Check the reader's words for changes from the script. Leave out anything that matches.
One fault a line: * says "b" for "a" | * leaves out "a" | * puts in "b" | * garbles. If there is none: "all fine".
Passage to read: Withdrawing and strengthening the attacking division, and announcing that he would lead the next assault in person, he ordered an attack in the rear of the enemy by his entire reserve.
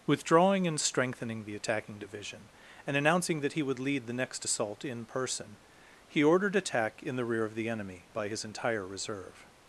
* leaves out "an"